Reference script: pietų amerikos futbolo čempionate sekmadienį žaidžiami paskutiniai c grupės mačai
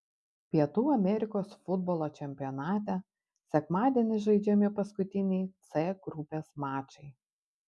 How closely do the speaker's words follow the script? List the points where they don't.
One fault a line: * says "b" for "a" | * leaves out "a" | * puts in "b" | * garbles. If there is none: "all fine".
all fine